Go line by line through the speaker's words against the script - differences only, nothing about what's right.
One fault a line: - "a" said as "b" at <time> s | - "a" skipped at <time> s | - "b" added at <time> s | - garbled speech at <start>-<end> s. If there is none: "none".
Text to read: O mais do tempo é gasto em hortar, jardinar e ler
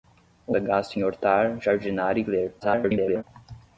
- "mais do tempo" skipped at 0.6 s
- garbled speech at 2.6-3.2 s